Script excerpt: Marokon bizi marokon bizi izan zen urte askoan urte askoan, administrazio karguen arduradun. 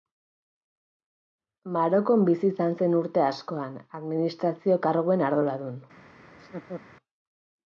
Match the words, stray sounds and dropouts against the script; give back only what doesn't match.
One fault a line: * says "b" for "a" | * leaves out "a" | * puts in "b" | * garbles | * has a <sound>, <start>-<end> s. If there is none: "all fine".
* leaves out "marokon bizi"
* leaves out "urte askoan"
* has a laugh, 6.3-6.8 s